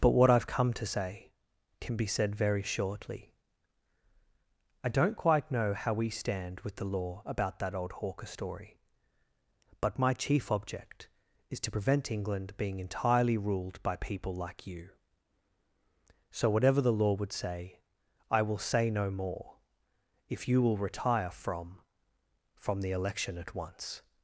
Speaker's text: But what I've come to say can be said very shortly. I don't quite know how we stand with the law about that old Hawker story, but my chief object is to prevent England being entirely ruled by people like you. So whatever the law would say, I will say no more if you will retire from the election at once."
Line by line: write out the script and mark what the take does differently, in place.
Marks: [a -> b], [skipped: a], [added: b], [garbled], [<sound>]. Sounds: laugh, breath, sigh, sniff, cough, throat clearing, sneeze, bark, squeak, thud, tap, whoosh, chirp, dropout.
But what I've come to say can be said very shortly. I don't quite know how we stand with the law about that old Hawker story, but my chief object is to prevent England being entirely ruled by people like you. So whatever the law would say, I will say no more if you will retire from [added: from] the election at once."